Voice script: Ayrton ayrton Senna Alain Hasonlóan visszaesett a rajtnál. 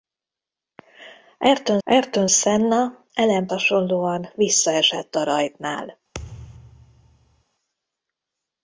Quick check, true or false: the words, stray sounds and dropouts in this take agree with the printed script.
false